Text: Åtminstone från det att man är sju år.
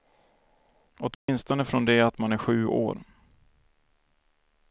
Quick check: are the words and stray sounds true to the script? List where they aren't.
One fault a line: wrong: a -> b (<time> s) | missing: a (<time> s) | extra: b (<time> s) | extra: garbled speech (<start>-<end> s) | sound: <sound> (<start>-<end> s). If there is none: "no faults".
sound: dropout (1.1-1.3 s)